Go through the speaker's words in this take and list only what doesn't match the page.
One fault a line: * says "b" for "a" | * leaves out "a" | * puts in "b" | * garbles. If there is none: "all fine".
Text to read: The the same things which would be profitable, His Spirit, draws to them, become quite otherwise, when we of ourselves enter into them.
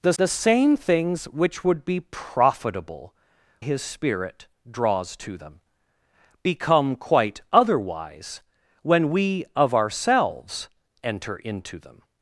all fine